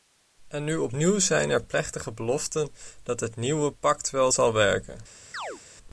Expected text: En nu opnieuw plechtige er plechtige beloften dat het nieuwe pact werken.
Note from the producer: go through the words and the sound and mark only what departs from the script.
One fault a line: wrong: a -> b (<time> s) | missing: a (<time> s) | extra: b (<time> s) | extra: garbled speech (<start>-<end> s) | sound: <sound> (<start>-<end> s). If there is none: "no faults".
wrong: plechtige -> zijn (1.2 s)
extra: wel zal (4.1 s)
sound: chirp (5.3-5.6 s)